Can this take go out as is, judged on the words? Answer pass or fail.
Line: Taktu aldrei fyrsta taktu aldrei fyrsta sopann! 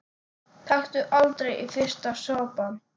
fail